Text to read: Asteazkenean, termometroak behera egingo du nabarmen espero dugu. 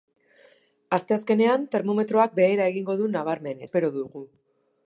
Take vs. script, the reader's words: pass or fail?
pass